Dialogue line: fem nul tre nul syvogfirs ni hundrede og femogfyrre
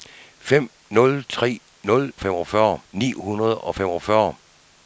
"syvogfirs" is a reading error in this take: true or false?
true